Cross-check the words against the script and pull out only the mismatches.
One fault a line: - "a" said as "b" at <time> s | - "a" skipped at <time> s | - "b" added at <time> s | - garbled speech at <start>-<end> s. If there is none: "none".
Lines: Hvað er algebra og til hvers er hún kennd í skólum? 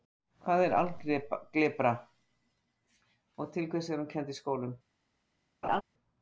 none